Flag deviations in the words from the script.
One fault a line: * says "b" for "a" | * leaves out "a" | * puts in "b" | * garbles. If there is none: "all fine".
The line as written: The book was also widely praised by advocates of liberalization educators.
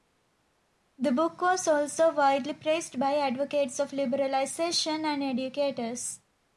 * puts in "and"